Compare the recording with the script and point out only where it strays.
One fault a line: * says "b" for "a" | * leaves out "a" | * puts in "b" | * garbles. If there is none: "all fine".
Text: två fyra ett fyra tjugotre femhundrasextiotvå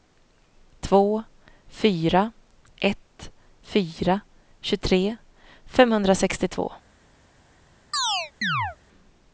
all fine